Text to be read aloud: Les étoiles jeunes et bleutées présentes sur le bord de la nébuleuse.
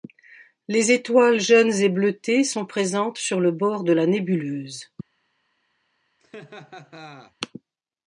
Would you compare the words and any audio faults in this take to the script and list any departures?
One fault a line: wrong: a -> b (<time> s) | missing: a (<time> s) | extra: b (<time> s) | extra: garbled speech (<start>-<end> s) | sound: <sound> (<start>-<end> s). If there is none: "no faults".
extra: sont (2.4 s)
sound: laugh (6.2-7.3 s)